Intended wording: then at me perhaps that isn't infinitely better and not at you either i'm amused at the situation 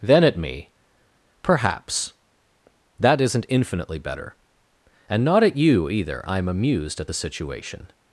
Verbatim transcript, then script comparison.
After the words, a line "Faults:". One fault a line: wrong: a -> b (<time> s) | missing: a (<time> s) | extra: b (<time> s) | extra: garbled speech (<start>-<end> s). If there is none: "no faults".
then at me perhaps that isn't infinitely better and not at you either i'm amused at the situation
Faults:
no faults